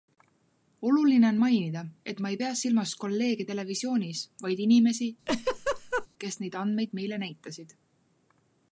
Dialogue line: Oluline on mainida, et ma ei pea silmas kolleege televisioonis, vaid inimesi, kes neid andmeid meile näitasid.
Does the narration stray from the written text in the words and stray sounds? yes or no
yes